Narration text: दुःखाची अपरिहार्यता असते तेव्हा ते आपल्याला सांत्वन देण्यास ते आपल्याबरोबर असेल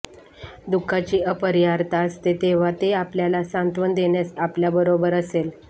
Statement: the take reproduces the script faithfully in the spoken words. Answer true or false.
false